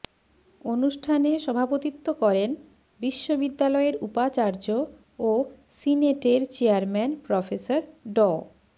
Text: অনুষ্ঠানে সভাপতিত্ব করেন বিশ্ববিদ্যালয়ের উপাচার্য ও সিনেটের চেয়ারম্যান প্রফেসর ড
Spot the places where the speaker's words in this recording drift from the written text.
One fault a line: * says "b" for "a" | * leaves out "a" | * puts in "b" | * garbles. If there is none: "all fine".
all fine